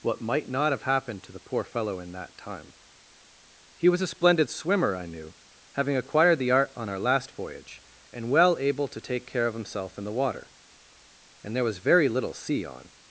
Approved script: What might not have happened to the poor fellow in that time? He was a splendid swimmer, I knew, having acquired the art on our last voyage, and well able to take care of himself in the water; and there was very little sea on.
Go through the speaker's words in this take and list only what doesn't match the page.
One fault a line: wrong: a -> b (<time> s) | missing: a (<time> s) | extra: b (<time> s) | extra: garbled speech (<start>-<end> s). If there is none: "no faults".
no faults